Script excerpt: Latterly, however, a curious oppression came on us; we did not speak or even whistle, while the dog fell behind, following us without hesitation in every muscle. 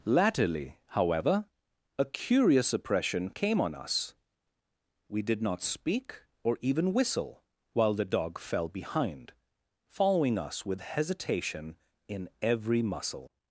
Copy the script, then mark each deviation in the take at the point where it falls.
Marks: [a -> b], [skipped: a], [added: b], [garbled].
Latterly, however, a curious oppression came on us; we did not speak or even whistle, while the dog fell behind, following us [without -> with] hesitation in every muscle.